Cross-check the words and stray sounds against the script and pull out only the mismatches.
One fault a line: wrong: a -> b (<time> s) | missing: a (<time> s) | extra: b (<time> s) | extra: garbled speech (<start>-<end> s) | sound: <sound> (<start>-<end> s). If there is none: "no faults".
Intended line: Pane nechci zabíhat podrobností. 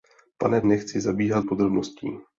no faults